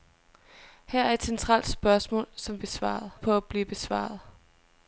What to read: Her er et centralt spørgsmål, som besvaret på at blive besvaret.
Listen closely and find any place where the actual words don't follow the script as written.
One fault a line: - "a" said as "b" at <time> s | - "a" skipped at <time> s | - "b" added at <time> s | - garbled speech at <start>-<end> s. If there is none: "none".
none